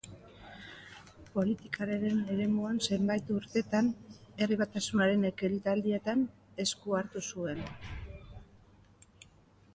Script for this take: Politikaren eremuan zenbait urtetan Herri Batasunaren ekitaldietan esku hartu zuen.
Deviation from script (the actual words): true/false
false